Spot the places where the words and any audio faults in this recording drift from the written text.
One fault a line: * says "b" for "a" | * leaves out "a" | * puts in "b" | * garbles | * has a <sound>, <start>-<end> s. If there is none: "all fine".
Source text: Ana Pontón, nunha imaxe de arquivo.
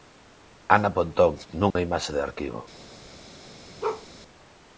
* has a dropout, 1.7-1.8 s
* has a bark, 3.8-4.1 s